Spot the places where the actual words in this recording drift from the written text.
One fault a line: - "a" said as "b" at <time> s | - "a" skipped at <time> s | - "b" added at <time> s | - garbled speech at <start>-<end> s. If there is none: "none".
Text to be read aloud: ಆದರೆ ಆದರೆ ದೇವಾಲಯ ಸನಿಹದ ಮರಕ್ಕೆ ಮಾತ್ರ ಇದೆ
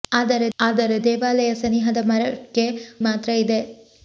none